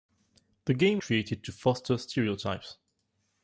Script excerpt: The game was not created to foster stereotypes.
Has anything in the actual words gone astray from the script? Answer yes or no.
yes